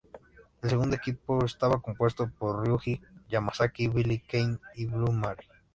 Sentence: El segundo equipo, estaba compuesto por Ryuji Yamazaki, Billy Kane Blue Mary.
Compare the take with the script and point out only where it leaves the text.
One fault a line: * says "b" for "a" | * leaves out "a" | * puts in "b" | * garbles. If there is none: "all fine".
* puts in "y"